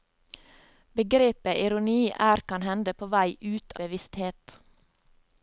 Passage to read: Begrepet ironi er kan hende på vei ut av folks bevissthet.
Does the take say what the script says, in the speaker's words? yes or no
no